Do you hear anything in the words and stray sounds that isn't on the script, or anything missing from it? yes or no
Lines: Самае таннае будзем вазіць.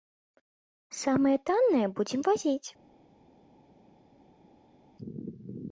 no